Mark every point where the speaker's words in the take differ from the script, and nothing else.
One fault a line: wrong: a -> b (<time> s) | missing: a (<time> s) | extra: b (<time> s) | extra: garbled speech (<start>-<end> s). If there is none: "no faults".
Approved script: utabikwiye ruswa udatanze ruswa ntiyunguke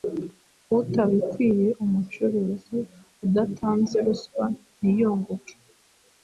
wrong: ruswa -> umucuruzi (1.8 s)